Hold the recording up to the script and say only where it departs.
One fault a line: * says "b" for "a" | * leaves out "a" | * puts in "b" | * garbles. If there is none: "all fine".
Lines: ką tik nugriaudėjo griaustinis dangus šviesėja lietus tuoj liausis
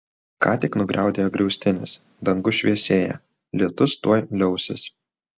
all fine